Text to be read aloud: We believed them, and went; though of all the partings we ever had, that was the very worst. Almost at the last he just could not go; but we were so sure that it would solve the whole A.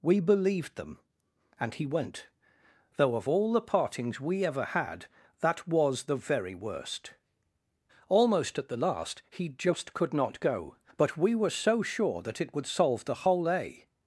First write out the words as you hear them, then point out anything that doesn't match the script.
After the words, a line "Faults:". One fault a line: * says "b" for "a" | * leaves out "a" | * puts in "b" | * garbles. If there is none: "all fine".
We believed them, and he went; though of all the partings we ever had, that was the very worst. Almost at the last he just could not go; but we were so sure that it would solve the whole A.
Faults:
* puts in "he"